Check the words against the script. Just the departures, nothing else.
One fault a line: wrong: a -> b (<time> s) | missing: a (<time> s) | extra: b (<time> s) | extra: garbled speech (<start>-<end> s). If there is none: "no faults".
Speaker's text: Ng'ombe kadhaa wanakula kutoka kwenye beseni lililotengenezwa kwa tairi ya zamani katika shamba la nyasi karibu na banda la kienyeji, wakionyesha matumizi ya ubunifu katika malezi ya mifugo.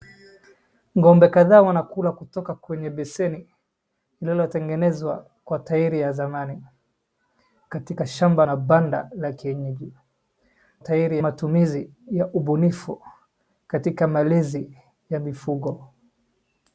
missing: la nyasi karibu (8.4 s)
wrong: wakionyesha -> tairi (10.8 s)